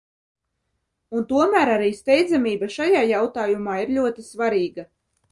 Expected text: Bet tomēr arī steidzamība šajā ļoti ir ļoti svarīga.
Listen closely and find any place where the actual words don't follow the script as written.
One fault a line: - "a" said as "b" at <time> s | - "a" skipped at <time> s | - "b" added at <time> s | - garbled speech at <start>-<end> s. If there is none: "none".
- "Bet" said as "Un" at 1.2 s
- "ļoti" said as "jautājumā" at 3.1 s